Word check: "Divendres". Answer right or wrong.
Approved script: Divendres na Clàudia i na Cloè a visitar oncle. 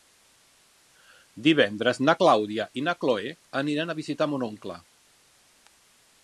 right